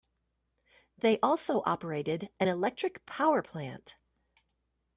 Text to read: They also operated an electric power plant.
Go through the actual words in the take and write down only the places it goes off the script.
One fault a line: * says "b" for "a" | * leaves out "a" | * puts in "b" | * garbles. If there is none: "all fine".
all fine